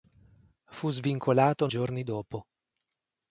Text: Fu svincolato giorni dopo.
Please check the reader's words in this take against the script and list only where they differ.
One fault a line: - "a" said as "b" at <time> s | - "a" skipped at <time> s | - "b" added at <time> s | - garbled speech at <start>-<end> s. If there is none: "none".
none